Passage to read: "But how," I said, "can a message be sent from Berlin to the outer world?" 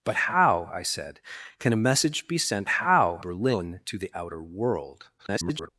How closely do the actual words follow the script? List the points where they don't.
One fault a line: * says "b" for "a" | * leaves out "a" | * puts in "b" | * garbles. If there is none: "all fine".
* says "how" for "from"
* garbles